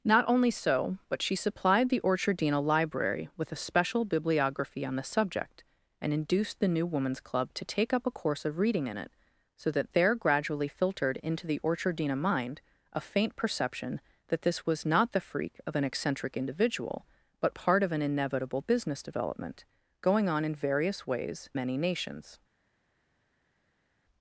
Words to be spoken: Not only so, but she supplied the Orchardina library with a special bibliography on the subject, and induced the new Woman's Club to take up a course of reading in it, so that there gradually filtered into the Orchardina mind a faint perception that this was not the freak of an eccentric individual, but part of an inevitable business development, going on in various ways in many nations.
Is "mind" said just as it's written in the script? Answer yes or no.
yes